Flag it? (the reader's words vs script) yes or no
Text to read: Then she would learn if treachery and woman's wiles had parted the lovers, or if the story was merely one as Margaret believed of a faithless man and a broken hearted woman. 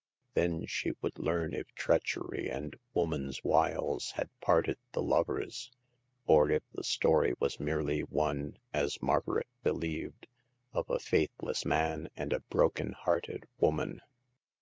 no